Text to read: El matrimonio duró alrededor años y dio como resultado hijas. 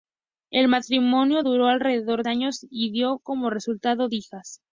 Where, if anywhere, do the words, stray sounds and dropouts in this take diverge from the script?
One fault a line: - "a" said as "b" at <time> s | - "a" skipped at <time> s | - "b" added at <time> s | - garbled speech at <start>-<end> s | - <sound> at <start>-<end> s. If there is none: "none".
none